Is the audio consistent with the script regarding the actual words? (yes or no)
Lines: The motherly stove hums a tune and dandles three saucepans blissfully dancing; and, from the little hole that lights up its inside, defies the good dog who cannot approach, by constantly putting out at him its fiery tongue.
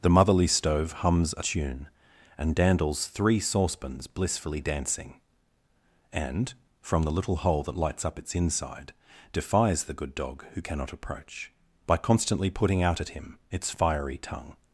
yes